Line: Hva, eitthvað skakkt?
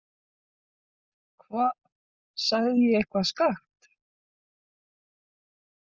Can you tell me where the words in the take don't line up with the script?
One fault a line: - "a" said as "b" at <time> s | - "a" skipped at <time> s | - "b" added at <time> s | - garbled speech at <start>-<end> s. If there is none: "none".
- "sagði ég" added at 2.5 s